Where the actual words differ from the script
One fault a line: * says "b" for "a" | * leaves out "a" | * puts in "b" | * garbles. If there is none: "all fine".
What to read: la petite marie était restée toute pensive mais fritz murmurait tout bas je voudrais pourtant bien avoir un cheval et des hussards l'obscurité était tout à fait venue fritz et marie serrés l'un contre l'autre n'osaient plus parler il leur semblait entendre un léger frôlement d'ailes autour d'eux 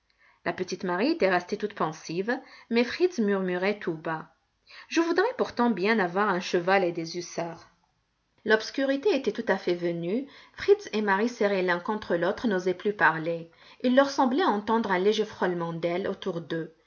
all fine